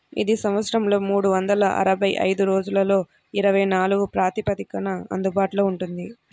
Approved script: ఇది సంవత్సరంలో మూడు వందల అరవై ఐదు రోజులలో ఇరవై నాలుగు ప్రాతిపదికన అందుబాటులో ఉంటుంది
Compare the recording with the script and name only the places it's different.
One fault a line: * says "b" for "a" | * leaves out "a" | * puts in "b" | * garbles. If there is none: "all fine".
all fine